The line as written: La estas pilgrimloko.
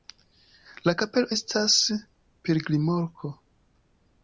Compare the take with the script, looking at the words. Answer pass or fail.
fail